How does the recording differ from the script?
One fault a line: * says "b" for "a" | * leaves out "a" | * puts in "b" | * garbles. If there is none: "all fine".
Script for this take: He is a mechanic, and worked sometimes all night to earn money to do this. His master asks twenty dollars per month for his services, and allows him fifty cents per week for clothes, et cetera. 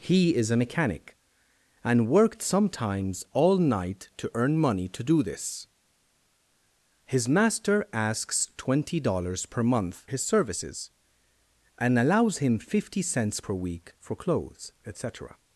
* leaves out "for"